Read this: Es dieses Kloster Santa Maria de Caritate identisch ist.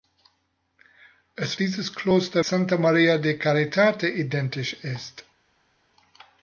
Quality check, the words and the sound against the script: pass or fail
pass